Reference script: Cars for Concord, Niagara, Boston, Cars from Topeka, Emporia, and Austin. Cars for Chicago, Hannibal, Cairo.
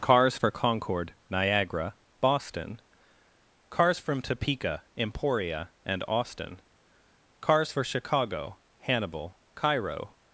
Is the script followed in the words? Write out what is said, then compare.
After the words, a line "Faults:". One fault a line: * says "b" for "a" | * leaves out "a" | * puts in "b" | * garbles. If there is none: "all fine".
Cars for Concord, Niagara, Boston, Cars from Topeka, Emporia, and Austin. Cars for Chicago, Hannibal, Cairo.
Faults:
all fine